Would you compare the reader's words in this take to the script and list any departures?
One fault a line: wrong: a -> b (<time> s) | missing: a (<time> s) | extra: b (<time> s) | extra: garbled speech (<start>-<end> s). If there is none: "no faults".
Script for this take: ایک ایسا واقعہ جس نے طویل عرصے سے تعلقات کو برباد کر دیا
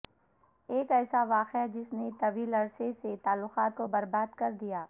no faults